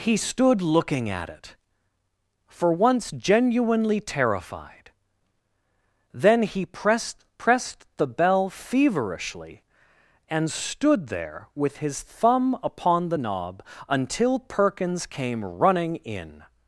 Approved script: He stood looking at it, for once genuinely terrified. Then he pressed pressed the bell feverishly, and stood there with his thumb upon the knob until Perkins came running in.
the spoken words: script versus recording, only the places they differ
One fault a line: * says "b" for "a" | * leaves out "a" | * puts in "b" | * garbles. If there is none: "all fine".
all fine